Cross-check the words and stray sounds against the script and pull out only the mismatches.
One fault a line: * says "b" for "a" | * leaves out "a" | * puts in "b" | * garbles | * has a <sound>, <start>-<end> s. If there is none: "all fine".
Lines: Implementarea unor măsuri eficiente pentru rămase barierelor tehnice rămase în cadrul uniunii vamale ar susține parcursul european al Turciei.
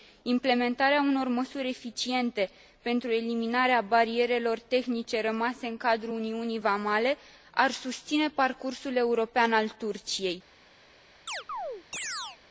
* says "eliminarea" for "rămase"
* has a chirp, 11.3-12.4 s